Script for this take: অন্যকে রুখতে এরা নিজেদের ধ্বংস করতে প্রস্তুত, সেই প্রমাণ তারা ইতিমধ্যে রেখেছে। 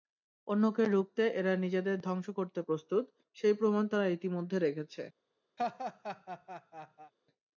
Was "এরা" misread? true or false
false